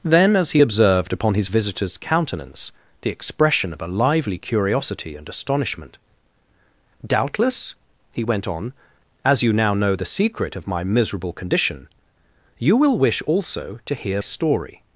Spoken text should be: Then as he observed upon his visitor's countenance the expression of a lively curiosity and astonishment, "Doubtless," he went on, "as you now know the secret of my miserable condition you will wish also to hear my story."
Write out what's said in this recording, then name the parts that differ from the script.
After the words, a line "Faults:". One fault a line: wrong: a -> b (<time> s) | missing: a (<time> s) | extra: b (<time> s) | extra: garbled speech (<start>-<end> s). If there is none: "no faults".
Then as he observed upon his visitor's countenance the expression of a lively curiosity and astonishment, "Doubtless," he went on, "as you now know the secret of my miserable condition you will wish also to hear story."
Faults:
missing: my (14.2 s)